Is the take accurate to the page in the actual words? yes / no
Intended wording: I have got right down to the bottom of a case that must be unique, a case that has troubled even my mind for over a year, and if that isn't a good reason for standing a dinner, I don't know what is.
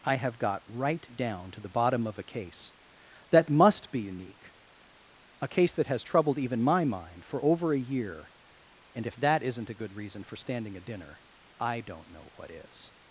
yes